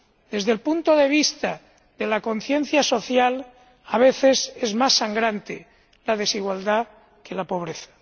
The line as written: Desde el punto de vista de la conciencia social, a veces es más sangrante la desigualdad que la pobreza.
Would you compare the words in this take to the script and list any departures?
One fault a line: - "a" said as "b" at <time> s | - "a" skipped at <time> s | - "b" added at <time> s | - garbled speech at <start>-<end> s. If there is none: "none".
none